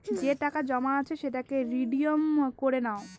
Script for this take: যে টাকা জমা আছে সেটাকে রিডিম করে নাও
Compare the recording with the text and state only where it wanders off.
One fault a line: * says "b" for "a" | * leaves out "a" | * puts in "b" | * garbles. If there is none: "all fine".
all fine